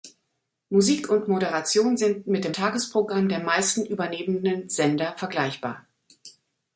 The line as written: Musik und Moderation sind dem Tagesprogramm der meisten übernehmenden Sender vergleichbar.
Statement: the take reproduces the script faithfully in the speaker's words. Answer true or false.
false